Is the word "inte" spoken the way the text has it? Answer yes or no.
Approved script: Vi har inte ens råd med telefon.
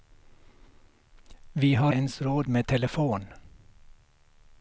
no